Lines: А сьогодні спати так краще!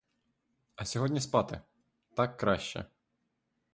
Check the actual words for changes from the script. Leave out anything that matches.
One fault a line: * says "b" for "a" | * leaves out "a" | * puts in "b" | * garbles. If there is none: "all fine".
all fine